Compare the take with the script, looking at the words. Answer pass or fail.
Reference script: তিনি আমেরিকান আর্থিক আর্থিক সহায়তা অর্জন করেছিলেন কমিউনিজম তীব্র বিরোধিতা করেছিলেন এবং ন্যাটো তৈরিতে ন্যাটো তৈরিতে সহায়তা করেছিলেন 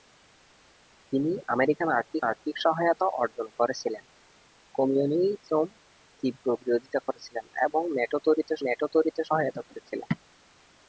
pass